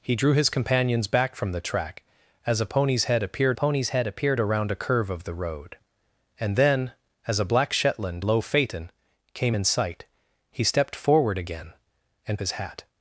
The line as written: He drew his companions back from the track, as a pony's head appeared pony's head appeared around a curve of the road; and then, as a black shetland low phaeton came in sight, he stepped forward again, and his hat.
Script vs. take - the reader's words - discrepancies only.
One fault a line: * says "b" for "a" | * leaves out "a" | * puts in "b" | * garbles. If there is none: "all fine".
all fine